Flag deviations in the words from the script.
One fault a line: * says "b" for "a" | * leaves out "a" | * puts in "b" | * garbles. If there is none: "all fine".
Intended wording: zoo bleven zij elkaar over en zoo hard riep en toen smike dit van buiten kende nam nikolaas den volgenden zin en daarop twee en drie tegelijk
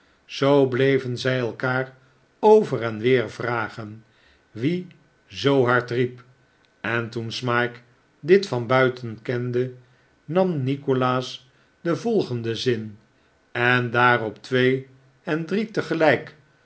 * puts in "weer vragen wie"